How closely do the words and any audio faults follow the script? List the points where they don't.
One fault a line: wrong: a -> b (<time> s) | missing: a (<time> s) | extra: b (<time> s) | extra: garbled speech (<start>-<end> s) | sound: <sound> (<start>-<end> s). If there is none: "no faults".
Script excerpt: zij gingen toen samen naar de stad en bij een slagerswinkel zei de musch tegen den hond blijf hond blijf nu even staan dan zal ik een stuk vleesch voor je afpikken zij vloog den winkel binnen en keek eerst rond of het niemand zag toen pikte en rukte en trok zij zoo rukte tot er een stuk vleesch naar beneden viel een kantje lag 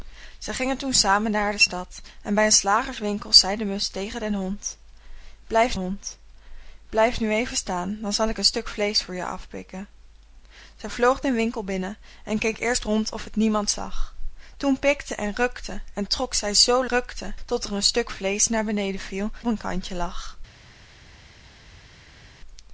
no faults